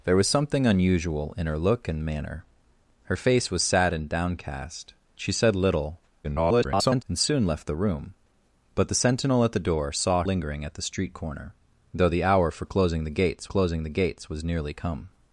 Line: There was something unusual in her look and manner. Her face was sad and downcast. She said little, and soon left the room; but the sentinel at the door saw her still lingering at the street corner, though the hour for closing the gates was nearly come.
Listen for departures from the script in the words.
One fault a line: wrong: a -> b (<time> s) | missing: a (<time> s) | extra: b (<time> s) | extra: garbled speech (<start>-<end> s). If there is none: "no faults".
extra: garbled speech (6.2-7.0 s)
missing: her still (10.2 s)
extra: closing the gates (13.4 s)